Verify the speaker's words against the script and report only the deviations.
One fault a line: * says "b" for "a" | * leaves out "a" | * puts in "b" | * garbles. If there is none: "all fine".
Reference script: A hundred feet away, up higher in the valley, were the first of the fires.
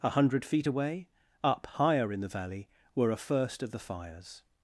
* says "a" for "the"